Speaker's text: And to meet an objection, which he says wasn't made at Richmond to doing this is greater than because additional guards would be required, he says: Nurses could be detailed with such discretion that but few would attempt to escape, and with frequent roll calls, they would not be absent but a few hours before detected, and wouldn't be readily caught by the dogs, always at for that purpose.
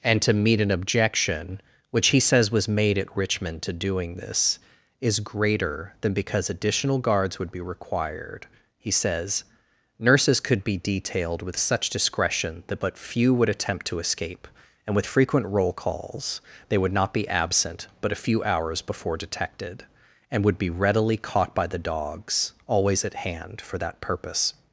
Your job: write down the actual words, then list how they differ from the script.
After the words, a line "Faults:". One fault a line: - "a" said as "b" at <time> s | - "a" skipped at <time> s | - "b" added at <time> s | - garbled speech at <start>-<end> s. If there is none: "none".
And to meet an objection, which he says was made at Richmond to doing this is greater than because additional guards would be required, he says: Nurses could be detailed with such discretion that but few would attempt to escape, and with frequent roll calls, they would not be absent but a few hours before detected, and would be readily caught by the dogs, always at hand for that purpose.
Faults:
- "wasn't" said as "was" at 2.5 s
- "wouldn't" said as "would" at 20.4 s
- "hand" added at 23.1 s